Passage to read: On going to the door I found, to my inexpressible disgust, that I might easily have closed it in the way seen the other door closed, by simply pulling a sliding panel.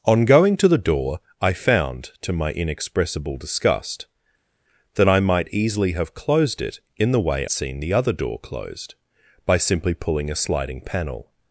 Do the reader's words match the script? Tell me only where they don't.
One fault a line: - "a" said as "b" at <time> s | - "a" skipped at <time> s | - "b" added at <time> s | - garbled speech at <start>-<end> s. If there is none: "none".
none